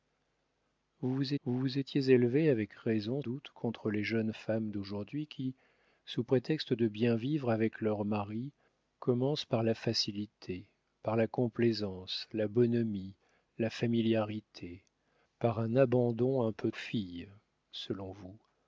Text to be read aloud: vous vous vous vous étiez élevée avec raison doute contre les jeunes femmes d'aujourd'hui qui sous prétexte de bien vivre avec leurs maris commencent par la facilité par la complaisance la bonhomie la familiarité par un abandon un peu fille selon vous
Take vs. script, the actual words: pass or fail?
pass